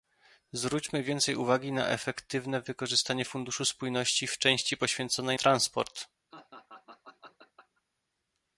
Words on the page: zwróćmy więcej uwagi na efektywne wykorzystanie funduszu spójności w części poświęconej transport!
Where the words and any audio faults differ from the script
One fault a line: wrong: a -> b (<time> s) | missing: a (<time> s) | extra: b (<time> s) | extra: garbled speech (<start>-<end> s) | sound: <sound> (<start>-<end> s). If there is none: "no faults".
sound: laugh (6.3-7.8 s)